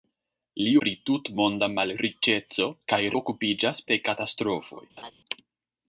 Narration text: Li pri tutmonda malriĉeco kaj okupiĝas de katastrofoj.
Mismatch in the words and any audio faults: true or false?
true